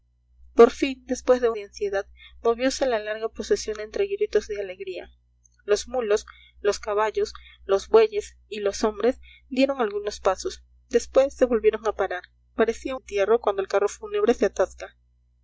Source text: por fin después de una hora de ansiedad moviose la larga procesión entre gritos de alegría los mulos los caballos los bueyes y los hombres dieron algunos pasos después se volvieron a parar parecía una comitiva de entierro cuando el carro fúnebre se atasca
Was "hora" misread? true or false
true